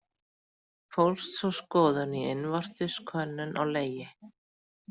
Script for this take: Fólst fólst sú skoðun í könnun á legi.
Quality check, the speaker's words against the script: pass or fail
fail